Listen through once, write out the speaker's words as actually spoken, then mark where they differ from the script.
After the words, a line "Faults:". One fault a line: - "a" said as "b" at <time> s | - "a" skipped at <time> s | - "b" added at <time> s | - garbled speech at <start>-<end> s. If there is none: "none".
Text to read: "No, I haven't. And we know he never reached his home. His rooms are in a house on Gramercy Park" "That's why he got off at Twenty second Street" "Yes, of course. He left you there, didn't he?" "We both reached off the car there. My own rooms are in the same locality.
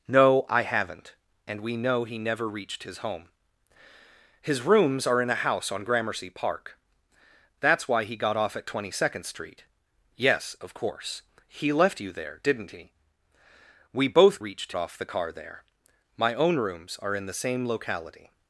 "No, I haven't. And we know he never reached his home. His rooms are in a house on Gramercy Park" "That's why he got off at Twenty second Street" "Yes, of course. He left you there, didn't he?" "We both reached off the car there. My own rooms are in the same locality.
Faults:
none